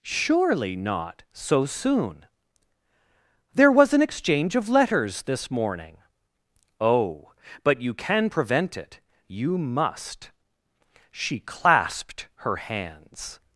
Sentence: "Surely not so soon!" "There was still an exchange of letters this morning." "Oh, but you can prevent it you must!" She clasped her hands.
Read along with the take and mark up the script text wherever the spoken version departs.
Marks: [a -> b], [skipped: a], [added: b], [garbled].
"Surely not so soon!" "There was [skipped: still] an exchange of letters this morning." "Oh, but you can prevent it you must!" She clasped her hands.